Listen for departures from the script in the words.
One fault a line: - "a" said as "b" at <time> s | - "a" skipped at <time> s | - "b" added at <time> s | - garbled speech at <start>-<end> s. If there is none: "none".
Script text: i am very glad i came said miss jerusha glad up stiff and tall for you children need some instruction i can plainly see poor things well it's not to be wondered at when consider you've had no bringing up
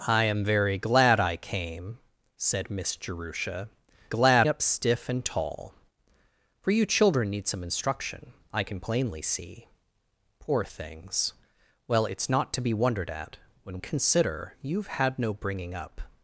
none